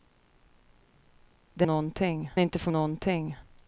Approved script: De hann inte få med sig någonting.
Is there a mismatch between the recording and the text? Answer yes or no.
yes